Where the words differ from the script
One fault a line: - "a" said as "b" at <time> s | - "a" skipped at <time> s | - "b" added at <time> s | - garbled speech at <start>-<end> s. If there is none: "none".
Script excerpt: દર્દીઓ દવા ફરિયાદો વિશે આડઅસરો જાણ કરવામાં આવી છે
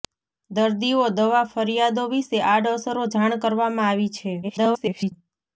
- garbled speech at 4.4-5.1 s